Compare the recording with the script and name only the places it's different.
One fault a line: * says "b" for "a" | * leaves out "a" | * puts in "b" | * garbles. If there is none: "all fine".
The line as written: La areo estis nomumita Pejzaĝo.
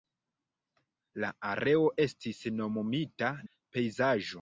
all fine